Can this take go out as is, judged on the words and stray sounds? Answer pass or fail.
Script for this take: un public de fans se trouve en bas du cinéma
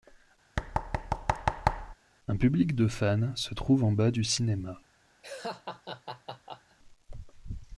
fail